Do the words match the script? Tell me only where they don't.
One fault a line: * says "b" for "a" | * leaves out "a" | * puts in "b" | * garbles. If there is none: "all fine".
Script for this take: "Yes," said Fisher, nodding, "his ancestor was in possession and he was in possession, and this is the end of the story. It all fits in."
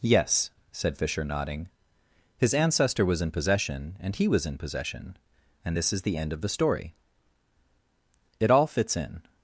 all fine